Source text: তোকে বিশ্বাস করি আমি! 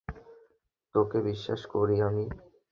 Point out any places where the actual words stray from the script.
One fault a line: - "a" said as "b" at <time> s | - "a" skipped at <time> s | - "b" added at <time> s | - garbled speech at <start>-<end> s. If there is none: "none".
none